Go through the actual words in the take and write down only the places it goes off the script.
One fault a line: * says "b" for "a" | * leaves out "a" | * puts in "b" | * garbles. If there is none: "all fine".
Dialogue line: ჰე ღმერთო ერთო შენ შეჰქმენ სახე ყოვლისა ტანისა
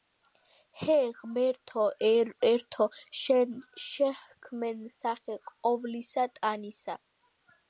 all fine